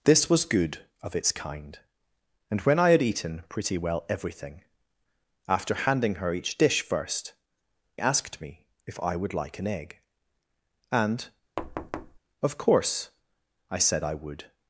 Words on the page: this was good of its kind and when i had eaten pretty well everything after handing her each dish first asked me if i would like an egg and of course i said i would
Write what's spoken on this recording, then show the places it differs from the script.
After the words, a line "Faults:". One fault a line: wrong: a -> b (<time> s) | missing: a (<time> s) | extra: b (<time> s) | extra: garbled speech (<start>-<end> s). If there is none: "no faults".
this was good of its kind and when i had eaten pretty well everything after handing her each dish first asked me if i would like an egg and of course i said i would
Faults:
no faults